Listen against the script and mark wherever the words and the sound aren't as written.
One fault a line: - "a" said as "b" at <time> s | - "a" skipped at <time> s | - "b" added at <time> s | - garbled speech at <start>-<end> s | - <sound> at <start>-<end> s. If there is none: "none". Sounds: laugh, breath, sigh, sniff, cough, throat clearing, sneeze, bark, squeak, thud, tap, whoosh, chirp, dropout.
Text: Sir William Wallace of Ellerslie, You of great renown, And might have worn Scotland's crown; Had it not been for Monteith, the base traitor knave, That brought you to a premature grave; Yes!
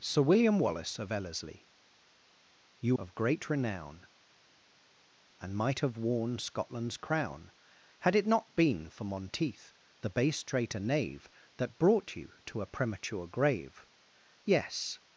none